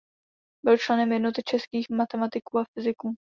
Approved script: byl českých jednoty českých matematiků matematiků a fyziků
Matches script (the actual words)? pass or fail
fail